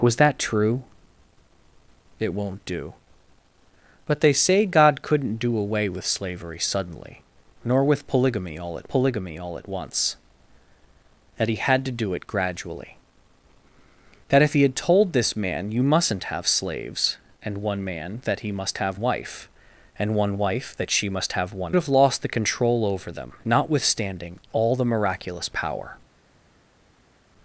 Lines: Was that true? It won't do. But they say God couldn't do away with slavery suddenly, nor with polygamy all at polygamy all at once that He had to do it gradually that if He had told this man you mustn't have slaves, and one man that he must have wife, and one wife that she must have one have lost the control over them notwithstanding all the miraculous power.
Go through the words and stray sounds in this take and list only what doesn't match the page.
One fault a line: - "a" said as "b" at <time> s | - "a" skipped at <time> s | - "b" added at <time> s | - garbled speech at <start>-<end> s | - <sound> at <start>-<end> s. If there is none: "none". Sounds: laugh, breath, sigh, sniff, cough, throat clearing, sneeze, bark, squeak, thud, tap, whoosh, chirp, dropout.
none